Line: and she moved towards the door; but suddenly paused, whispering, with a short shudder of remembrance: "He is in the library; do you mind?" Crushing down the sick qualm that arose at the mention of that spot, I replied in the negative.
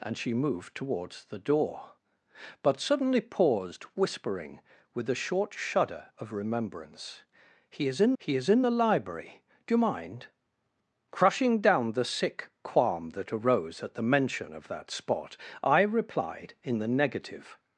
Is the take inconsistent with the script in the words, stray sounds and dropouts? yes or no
yes